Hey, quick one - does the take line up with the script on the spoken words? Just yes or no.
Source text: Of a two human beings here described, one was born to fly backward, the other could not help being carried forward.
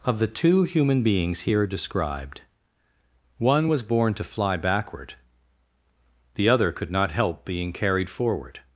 no